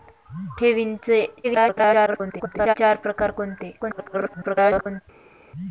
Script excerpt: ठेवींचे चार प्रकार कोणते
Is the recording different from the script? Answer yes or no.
yes